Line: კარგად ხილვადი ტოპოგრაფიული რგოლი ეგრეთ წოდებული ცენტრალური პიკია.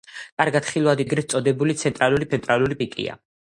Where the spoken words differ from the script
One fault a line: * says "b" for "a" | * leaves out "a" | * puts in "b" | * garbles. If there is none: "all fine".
* leaves out "ტოპოგრაფიული რგოლი"
* puts in "ცენტრალური"